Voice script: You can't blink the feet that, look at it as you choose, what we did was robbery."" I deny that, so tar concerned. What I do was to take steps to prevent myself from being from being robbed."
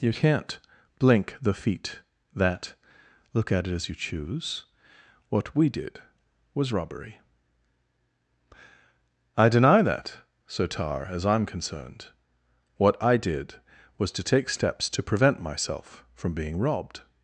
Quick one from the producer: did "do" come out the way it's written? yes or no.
no